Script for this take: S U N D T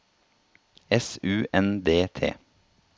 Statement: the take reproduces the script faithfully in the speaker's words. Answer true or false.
true